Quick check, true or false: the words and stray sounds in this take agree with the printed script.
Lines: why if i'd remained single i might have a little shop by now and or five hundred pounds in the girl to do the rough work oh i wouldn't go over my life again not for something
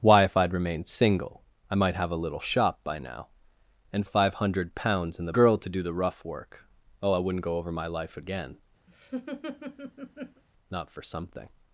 false